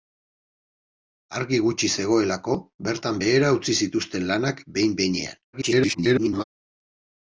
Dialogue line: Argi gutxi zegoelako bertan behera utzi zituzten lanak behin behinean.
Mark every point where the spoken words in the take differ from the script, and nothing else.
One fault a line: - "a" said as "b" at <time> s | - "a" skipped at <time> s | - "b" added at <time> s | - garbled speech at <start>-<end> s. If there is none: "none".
- garbled speech at 5.5-6.4 s